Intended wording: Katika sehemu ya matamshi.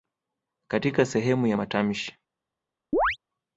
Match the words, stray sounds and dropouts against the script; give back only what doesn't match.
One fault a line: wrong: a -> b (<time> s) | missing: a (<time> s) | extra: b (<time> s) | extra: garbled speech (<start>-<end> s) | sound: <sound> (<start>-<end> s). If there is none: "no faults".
sound: chirp (2.9-3.2 s)